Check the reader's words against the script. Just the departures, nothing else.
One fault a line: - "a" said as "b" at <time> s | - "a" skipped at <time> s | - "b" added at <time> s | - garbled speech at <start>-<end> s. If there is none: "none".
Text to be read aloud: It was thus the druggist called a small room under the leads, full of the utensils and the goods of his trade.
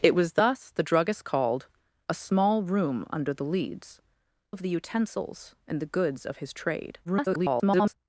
- "full" skipped at 4.0 s
- garbled speech at 7.0-7.9 s